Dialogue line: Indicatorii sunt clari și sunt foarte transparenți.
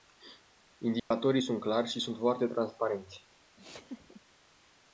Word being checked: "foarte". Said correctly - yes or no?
yes